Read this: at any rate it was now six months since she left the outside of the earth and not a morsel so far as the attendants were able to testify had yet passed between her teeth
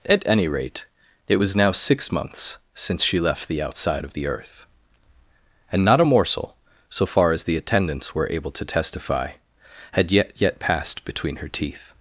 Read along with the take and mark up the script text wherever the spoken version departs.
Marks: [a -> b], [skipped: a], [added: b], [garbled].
at any rate it was now six months since she left the outside of the earth and not a morsel so far as the attendants were able to testify had yet [added: yet] passed between her teeth